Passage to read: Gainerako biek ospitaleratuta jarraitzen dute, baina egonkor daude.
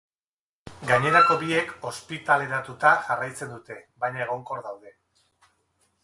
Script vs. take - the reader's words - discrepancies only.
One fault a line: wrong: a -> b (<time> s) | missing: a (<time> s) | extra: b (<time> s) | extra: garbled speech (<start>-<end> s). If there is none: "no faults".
no faults